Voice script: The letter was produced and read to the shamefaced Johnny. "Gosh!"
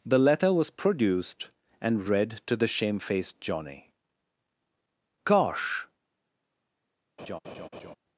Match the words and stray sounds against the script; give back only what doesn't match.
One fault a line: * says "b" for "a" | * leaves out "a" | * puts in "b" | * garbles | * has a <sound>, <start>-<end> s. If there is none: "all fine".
* has a laugh, 7.2-8.0 s